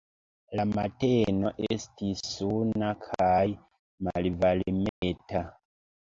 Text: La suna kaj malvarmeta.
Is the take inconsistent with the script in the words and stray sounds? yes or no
yes